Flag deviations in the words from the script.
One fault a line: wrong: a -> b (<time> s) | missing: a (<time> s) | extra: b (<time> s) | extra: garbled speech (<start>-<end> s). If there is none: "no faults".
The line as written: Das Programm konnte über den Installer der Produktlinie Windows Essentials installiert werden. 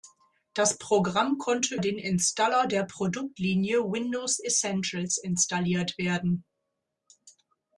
missing: über (1.8 s)